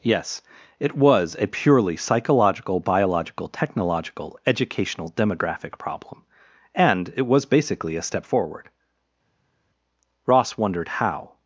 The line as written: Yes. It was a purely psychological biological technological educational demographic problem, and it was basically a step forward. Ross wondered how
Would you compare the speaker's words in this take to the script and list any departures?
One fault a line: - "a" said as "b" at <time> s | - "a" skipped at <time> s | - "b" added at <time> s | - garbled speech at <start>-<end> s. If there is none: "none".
none